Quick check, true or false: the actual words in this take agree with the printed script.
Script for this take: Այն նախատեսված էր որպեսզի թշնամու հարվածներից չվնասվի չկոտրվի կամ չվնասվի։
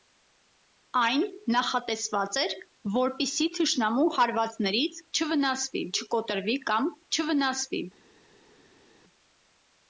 true